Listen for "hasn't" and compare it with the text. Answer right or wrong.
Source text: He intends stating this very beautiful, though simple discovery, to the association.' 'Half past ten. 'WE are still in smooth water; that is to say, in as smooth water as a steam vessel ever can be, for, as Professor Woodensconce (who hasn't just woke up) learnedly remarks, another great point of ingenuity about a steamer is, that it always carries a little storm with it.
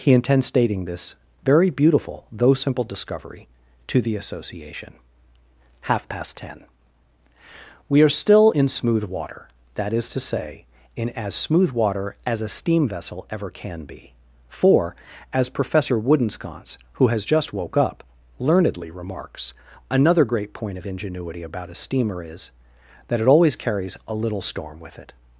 wrong